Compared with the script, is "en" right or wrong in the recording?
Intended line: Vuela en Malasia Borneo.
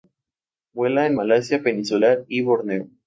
right